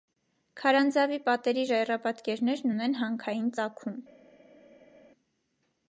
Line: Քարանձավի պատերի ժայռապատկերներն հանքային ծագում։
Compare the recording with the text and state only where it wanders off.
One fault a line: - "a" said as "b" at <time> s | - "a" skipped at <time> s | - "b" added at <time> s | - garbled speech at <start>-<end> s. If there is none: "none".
- "ունեն" added at 2.8 s